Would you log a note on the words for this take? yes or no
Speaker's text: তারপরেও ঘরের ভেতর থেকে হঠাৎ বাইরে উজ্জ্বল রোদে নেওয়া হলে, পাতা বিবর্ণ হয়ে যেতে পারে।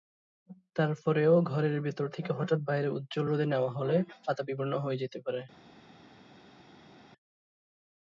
no